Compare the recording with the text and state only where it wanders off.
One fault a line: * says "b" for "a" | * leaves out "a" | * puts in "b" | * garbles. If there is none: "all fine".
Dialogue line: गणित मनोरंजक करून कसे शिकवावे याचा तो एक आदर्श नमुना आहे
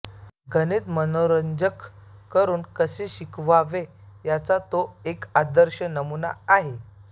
all fine